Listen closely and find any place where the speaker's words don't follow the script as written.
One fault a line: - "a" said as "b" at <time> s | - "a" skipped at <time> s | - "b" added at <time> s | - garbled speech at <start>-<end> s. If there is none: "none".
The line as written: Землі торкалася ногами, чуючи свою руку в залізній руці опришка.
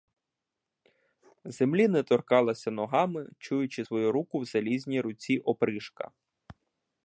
- "не" added at 1.9 s